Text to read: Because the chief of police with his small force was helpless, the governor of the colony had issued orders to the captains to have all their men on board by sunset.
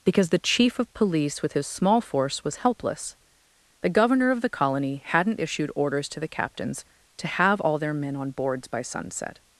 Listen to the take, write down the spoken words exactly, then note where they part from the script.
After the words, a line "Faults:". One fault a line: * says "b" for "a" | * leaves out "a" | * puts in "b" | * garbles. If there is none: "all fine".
Because the chief of police with his small force was helpless, the governor of the colony hadn't issued orders to the captains to have all their men on boards by sunset.
Faults:
* says "hadn't" for "had"
* says "boards" for "board"